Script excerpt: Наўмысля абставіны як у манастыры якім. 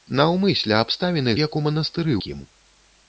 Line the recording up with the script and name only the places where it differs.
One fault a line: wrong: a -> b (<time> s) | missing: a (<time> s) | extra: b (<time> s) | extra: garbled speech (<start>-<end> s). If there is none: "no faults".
no faults